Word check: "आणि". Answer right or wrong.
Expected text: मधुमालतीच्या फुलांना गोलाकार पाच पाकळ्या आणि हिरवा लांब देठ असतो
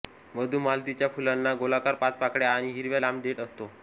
right